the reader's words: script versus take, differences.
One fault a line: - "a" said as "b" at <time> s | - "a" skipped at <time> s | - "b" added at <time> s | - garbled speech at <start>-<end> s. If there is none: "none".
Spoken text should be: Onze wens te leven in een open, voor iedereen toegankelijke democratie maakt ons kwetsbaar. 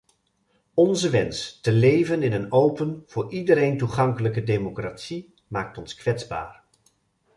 none